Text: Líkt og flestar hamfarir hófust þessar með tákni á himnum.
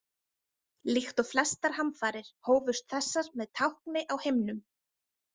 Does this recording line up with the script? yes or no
yes